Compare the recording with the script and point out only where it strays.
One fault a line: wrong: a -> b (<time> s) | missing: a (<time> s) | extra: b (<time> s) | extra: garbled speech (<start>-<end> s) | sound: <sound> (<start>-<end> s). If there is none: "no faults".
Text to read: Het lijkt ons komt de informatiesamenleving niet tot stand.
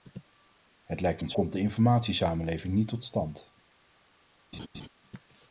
sound: laugh (4.5-4.9 s)